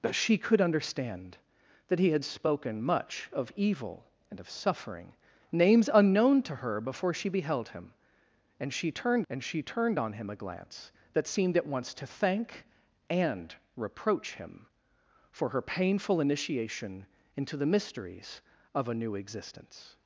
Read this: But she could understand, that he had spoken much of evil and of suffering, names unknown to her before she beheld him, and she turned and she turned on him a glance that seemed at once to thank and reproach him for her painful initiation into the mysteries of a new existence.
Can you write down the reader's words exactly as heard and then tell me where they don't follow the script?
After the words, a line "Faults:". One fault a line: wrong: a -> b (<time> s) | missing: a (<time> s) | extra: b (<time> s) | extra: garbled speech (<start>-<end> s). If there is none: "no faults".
But she could understand, that he had spoken much of evil and of suffering, names unknown to her before she beheld him, and she turned and she turned on him a glance that seemed at once to thank and reproach him for her painful initiation into the mysteries of a new existence.
Faults:
no faults